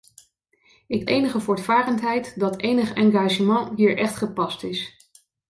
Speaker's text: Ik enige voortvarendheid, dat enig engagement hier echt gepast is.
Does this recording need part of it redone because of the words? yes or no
no